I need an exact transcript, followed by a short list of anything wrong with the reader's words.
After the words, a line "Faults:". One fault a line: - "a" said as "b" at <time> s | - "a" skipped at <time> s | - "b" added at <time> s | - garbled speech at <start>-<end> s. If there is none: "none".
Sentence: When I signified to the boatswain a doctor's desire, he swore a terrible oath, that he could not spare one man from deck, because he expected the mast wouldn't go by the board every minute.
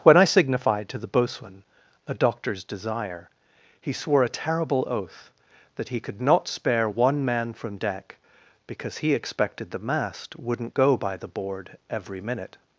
When I signified to the boatswain a doctor's desire, he swore a terrible oath, that he could not spare one man from deck, because he expected the mast wouldn't go by the board every minute.
Faults:
none